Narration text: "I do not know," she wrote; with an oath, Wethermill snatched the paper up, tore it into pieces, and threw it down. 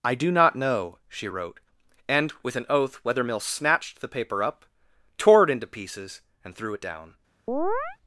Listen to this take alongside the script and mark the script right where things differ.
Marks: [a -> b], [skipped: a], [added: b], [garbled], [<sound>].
"I do not know," she wrote; [added: and] with an oath, Wethermill snatched the paper up, tore it into pieces, and threw it down. [chirp]